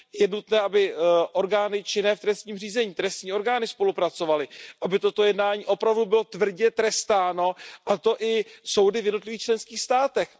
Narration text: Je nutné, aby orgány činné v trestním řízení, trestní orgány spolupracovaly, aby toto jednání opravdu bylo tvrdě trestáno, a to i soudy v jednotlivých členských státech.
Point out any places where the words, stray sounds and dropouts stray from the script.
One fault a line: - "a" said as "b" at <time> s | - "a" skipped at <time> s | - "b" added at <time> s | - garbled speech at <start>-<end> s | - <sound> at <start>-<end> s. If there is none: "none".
none